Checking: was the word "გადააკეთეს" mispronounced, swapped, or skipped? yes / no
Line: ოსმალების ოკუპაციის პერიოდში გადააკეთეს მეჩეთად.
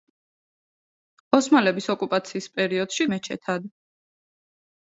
yes